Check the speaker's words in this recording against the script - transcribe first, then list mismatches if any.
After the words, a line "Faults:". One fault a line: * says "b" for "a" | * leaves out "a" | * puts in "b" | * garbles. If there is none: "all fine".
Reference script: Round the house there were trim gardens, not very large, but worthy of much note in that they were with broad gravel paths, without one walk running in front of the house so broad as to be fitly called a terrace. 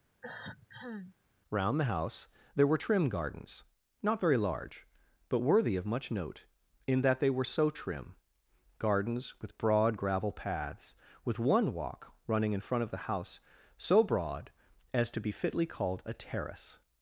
Round the house there were trim gardens, not very large, but worthy of much note in that they were so trim, gardens with broad gravel paths, with one walk running in front of the house so broad as to be fitly called a terrace.
Faults:
* puts in "so trim gardens"
* says "with" for "without"